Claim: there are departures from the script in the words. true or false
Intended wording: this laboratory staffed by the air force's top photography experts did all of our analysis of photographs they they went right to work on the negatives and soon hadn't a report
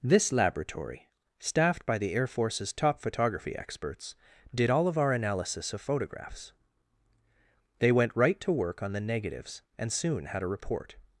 true